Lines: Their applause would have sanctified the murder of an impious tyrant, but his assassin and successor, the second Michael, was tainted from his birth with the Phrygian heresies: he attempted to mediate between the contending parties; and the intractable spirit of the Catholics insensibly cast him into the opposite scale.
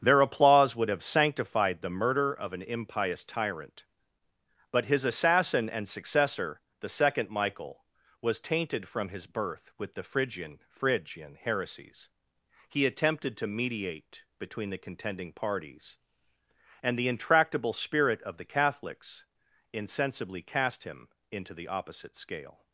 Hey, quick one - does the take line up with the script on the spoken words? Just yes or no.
no